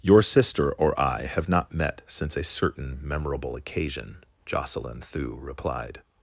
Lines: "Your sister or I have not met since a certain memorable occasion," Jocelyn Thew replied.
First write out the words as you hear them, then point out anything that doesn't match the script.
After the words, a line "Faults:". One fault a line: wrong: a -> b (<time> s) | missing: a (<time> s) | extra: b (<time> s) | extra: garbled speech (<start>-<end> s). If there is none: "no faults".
"Your sister or I have not met since a certain memorable occasion," Jocelyn Thew replied.
Faults:
no faults